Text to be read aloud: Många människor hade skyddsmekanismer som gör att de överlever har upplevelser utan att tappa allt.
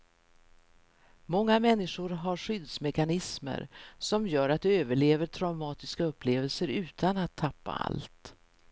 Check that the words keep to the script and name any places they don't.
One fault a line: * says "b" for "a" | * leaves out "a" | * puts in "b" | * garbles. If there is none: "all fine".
* says "har" for "hade"
* says "traumatiska" for "har"